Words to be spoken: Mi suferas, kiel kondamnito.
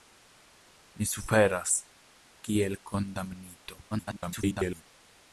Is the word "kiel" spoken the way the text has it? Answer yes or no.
yes